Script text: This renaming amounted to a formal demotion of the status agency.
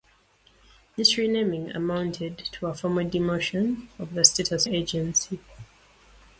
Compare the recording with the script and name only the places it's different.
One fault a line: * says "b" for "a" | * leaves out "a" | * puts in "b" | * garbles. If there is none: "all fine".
all fine